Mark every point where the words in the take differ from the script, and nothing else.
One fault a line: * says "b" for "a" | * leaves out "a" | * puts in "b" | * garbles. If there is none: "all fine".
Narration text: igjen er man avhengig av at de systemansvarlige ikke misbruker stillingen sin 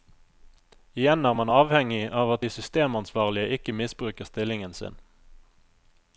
all fine